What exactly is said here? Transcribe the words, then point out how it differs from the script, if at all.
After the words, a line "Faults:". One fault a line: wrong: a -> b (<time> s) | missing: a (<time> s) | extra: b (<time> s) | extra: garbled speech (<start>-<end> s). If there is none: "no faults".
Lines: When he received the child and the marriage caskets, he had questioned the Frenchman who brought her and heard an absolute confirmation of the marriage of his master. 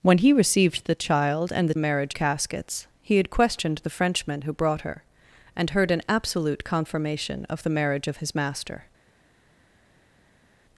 When he received the child and the marriage caskets, he had questioned the Frenchman who brought her and heard an absolute confirmation of the marriage of his master.
Faults:
no faults